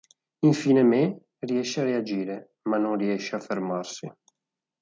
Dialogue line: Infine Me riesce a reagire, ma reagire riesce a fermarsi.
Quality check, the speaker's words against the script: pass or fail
fail